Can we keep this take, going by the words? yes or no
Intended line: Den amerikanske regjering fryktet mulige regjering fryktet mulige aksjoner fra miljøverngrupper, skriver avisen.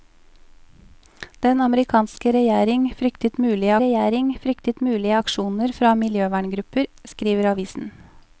yes